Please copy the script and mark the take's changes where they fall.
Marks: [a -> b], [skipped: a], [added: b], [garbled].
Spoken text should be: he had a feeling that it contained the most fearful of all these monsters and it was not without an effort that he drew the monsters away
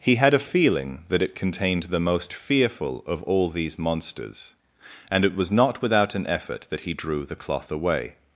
he had a feeling that it contained the most fearful of all these monsters and it was not without an effort that he drew the [monsters -> cloth] away